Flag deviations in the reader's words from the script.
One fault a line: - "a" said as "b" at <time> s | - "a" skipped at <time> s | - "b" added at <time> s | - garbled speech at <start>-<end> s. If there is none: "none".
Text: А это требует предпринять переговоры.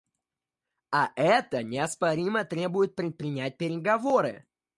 - "неоспоримо" added at 1.6 s